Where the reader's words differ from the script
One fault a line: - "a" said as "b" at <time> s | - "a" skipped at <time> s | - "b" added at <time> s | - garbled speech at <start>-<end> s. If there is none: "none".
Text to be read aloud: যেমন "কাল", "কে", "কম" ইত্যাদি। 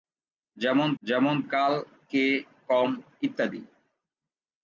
- "যেমন" added at 1.0 s